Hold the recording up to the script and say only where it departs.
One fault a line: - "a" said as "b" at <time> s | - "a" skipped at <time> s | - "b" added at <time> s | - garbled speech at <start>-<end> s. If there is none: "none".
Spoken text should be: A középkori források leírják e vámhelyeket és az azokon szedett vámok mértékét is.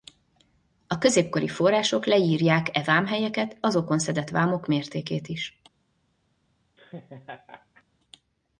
- "és az" skipped at 3.6 s